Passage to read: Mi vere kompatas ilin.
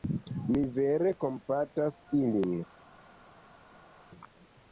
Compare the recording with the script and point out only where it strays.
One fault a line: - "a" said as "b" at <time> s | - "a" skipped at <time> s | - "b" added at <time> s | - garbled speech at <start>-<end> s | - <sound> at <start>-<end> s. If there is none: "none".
none